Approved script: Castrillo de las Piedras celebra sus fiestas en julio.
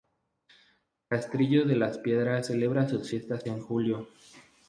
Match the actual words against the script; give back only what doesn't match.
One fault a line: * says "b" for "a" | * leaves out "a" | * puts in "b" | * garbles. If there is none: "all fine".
all fine